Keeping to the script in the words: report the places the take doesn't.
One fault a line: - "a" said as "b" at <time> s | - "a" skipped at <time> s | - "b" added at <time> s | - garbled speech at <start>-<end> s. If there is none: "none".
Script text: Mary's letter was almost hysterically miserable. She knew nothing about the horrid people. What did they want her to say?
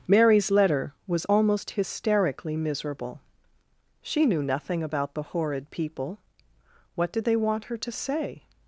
none